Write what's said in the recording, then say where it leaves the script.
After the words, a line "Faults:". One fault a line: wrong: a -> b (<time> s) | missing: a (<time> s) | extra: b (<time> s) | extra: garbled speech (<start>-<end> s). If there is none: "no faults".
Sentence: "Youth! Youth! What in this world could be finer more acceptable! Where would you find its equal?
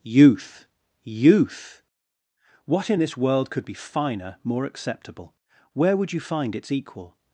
"Youth! Youth! What in this world could be finer more acceptable! Where would you find its equal?
Faults:
no faults